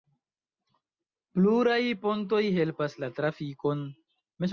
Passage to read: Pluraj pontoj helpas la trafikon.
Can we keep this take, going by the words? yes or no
yes